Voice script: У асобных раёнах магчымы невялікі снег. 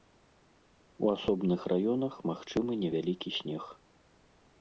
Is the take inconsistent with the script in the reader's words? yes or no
no